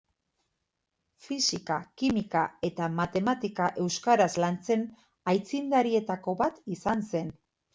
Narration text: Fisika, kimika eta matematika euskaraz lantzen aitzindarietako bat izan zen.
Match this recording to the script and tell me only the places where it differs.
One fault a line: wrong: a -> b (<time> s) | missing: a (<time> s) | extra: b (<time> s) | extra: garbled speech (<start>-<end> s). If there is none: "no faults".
no faults